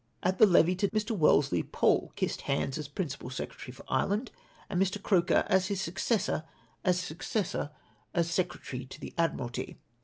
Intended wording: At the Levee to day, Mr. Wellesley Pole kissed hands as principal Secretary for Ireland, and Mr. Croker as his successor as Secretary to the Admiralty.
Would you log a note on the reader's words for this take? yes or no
yes